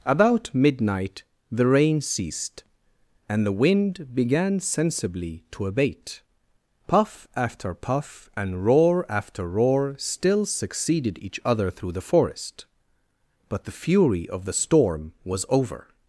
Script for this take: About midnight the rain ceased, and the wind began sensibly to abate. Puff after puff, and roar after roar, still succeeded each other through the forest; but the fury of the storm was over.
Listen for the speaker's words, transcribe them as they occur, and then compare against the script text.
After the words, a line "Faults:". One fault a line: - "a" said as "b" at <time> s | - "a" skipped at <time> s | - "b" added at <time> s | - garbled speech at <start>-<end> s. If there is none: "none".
About midnight the rain ceased, and the wind began sensibly to abate. Puff after puff, and roar after roar, still succeeded each other through the forest; but the fury of the storm was over.
Faults:
none